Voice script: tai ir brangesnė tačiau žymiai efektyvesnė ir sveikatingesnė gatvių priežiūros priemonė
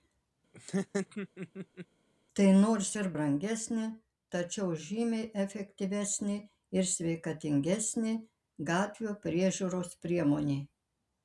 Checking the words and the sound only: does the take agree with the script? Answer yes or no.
no